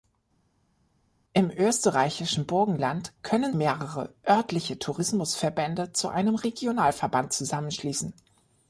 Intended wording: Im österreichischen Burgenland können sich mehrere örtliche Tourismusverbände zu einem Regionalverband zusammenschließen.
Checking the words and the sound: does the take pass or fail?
fail